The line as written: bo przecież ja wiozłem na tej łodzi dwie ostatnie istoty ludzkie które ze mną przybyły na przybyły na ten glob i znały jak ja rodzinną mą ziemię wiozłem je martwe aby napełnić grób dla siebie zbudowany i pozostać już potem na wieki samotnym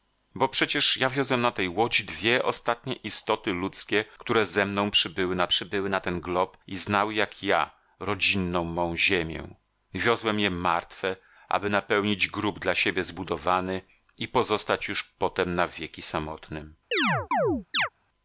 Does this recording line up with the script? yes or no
yes